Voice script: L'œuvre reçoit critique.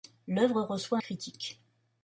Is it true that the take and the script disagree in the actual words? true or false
false